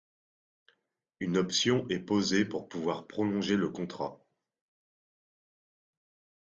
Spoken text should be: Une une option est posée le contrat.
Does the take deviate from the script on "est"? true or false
false